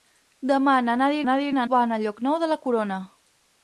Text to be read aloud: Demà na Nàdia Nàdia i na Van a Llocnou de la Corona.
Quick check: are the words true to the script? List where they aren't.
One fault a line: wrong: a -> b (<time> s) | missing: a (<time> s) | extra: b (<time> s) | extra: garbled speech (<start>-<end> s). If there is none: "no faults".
no faults